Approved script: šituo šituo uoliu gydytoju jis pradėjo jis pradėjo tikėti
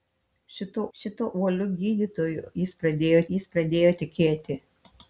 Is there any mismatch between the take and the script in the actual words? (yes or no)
no